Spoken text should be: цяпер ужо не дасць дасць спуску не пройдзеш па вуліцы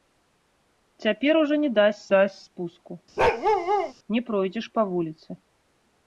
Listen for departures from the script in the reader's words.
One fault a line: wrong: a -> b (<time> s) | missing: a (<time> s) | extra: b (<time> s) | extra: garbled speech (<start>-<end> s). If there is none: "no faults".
no faults